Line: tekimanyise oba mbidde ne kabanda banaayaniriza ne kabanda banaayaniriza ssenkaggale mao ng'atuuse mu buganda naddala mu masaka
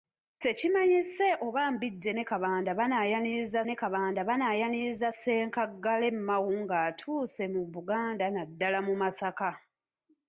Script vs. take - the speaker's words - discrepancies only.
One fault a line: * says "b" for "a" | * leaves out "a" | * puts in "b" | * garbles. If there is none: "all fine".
all fine